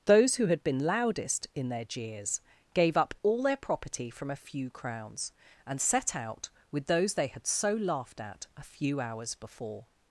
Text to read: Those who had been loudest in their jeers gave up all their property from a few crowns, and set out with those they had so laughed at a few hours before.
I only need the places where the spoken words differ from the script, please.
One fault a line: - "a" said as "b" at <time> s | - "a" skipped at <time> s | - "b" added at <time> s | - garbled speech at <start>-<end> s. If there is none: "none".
none